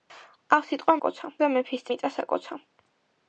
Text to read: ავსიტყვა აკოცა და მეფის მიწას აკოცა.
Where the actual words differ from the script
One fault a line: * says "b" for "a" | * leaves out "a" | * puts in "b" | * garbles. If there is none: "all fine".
all fine